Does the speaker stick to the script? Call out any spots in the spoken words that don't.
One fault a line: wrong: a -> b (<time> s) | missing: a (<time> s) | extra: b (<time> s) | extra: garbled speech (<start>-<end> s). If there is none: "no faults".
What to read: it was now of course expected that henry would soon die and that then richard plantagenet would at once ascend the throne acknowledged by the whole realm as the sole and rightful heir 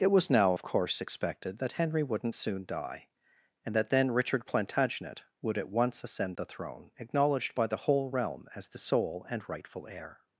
wrong: would -> wouldn't (2.0 s)